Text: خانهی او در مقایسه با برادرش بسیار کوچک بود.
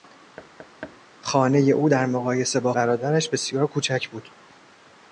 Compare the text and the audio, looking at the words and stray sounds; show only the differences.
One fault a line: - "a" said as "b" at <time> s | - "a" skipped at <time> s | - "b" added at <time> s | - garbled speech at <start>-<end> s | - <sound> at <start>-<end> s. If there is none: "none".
- thud at 0.4-1.0 s